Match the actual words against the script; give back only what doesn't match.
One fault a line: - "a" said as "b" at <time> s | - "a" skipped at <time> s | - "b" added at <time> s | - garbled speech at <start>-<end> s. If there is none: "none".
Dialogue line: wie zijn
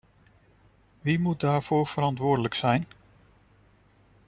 - "moet daarvoor verantwoordelijk" added at 1.2 s